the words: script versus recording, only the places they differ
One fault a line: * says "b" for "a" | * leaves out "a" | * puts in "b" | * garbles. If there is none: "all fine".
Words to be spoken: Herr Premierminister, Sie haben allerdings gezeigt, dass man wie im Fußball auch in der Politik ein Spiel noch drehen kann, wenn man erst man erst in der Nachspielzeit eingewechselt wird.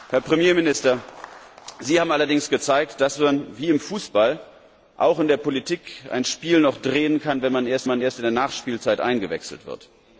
all fine